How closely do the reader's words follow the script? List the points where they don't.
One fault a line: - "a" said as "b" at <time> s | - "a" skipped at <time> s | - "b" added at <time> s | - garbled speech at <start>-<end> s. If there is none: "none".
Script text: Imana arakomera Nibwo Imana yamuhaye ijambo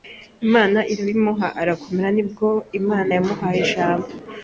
- "irabimuha" added at 0.9 s